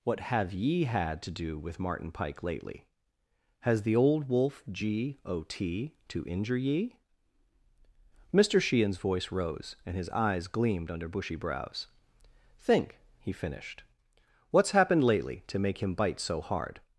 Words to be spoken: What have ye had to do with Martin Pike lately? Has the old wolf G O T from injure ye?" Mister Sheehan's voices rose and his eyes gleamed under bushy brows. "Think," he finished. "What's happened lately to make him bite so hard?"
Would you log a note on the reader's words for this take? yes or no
yes